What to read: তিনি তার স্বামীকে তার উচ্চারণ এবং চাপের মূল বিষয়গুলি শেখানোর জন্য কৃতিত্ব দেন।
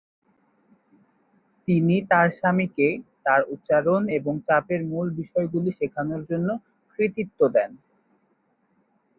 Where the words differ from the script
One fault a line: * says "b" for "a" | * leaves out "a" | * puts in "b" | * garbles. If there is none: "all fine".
all fine